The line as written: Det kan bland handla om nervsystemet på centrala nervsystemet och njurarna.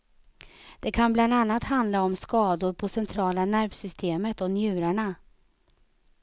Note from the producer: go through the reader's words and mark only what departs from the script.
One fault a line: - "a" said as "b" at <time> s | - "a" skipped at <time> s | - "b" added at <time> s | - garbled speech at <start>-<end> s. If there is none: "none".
- "annat" added at 1.3 s
- "nervsystemet" said as "skador" at 2.2 s